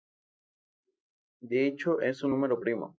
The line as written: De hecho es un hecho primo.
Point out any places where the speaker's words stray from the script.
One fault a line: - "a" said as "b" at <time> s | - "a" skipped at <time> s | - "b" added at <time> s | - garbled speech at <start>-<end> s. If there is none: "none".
- "hecho" said as "número" at 2.3 s